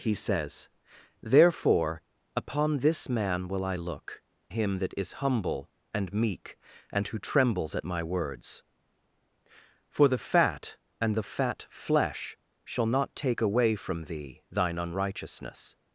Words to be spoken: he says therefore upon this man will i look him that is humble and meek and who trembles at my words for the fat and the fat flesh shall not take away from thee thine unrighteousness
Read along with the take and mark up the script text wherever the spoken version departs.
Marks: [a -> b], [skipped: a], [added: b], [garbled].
he says therefore upon this man will i look him that is humble and meek and who trembles at my words for the fat and the fat flesh shall not take away from thee thine unrighteousness